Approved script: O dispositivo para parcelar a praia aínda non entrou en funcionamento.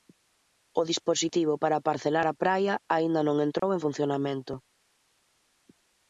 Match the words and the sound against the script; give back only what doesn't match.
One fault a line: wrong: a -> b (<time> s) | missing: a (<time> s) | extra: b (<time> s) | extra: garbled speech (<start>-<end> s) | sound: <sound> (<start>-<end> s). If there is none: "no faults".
sound: dropout (3.6-3.6 s)